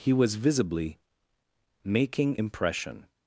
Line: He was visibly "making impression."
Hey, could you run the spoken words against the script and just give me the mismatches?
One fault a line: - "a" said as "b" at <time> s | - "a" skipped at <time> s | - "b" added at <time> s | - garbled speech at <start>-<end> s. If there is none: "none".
none